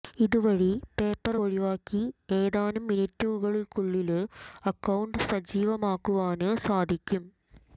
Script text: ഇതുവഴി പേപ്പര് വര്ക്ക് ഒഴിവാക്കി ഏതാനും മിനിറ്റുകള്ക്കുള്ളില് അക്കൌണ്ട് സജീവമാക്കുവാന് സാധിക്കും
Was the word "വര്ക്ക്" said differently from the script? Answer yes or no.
yes